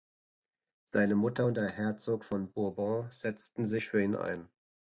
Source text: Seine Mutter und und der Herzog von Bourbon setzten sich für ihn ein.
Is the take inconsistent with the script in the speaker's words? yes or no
yes